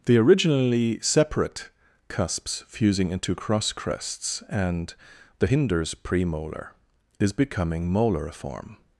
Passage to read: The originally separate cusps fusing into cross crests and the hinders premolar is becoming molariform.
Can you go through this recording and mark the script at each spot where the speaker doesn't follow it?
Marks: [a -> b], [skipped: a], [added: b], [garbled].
The originally separate cusps fusing into cross crests and the hinders premolar is becoming molariform.